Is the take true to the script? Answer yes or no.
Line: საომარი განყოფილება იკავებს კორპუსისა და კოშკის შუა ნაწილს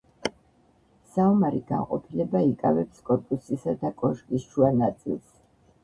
yes